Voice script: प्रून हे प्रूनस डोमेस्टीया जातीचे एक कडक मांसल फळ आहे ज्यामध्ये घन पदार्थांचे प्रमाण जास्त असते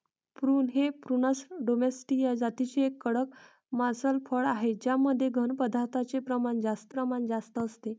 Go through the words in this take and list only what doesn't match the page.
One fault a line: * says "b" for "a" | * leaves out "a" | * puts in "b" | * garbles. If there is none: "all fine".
* puts in "प्रमाण जास्त"